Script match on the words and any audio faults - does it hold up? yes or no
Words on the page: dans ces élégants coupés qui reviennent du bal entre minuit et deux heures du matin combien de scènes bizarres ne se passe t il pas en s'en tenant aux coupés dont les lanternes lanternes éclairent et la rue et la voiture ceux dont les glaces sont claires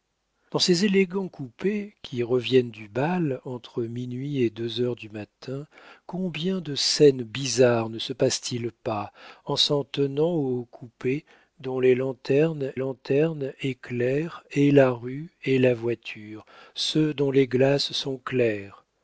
yes